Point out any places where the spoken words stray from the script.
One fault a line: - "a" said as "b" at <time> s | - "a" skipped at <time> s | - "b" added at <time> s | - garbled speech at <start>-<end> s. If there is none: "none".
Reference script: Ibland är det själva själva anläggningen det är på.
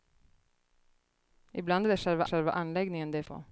none